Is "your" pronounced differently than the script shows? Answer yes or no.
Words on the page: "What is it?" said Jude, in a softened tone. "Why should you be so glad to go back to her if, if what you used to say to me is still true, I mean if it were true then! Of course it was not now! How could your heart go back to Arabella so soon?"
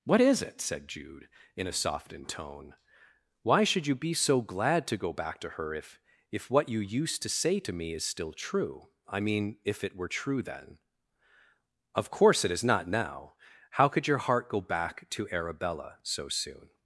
no